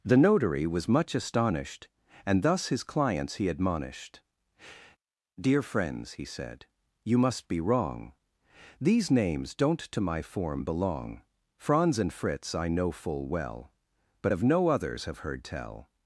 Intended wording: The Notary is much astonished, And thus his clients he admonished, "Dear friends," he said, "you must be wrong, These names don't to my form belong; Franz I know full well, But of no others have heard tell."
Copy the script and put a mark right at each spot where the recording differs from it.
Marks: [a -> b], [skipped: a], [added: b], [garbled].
The Notary [is -> was] much astonished, And thus his clients he admonished, "Dear friends," he said, "you must be wrong, These names don't to my form belong; Franz [added: and Fritz] I know full well, But of no others have heard tell."